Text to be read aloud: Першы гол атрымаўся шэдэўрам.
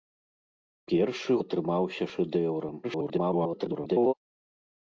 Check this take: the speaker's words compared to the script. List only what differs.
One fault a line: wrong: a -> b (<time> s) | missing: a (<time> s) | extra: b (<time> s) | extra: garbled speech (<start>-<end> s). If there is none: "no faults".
missing: гол (1.3 s)
extra: garbled speech (2.8-4.1 s)